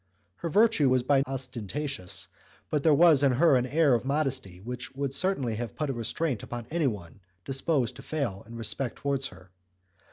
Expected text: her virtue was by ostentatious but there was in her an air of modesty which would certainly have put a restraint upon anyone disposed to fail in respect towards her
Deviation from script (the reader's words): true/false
false